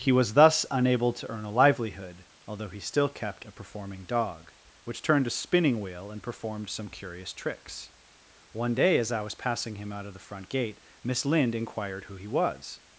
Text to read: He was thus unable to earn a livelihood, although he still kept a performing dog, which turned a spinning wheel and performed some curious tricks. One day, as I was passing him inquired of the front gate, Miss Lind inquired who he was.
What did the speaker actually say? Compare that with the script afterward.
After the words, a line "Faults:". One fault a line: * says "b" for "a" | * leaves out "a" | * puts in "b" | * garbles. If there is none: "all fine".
He was thus unable to earn a livelihood, although he still kept a performing dog, which turned a spinning wheel and performed some curious tricks. One day, as I was passing him out of the front gate, Miss Lind inquired who he was.
Faults:
* says "out" for "inquired"